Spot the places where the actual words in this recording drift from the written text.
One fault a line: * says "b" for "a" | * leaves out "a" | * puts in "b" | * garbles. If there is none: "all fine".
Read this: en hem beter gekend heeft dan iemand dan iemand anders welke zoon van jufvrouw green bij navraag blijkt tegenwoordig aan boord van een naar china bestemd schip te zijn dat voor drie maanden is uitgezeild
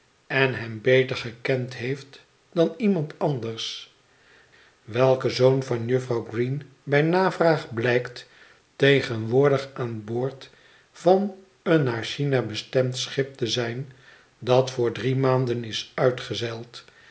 * leaves out "dan iemand"